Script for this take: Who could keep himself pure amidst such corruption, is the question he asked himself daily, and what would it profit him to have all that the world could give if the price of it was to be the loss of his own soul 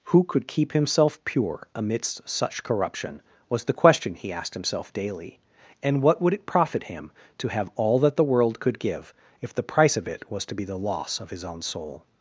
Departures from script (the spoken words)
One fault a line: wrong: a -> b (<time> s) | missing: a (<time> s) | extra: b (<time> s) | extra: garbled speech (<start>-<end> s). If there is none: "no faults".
wrong: is -> was (3.5 s)